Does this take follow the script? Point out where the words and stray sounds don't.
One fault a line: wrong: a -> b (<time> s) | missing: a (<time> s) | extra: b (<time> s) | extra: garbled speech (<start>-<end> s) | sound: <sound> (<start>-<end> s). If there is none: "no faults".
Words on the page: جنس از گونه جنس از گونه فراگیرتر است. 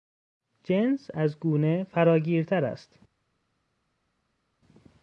missing: جنس از گونه (1.8 s)